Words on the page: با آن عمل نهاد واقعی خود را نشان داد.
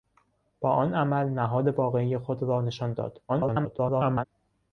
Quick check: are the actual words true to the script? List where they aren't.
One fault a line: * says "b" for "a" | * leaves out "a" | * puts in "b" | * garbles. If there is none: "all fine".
* garbles